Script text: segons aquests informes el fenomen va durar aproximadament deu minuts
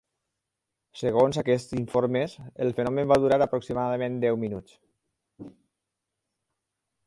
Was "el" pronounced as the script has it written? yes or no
yes